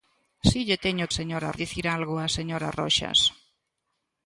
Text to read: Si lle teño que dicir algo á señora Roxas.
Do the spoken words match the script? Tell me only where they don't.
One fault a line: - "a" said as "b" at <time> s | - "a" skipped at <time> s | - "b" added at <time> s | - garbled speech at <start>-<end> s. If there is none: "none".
- "que" said as "señora" at 1.2 s